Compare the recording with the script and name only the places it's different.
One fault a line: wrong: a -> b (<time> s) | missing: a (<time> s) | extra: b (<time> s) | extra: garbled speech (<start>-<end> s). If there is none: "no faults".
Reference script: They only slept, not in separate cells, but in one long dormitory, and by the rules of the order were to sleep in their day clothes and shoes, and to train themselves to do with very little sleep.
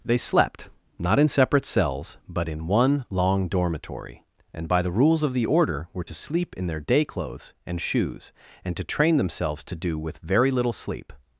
missing: only (0.2 s)